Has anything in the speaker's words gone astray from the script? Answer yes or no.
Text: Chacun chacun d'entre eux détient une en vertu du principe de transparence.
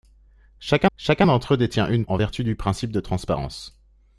no